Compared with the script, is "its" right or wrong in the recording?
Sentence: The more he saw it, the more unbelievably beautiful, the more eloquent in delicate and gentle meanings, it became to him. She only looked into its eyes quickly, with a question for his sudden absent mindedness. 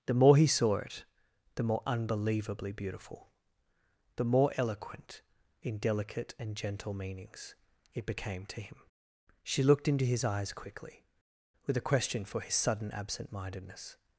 wrong